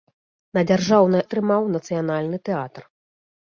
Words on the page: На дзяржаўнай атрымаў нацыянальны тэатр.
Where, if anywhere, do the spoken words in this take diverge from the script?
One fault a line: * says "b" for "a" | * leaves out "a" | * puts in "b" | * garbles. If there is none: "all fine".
all fine